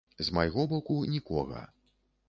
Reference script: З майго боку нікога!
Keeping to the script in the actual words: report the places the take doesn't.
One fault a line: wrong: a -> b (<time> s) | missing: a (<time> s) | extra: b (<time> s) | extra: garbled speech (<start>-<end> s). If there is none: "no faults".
no faults